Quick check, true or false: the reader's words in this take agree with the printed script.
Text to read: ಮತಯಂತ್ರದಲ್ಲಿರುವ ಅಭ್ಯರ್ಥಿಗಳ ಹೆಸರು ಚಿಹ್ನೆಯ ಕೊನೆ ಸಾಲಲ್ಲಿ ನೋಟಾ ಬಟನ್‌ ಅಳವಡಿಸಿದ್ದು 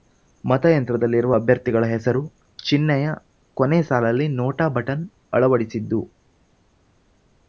true